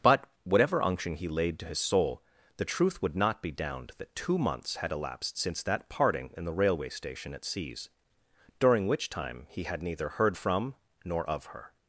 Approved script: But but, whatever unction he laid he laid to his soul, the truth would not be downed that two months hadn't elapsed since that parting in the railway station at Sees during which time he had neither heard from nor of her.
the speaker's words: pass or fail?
fail